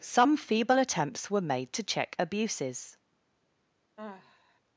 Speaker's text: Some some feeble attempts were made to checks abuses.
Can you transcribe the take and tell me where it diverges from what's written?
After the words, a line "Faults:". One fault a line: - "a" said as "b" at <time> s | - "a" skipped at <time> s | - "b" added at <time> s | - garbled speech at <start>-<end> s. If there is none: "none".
Some feeble attempts were made to check abuses.
Faults:
- "some" skipped at 0.3 s
- "checks" said as "check" at 1.8 s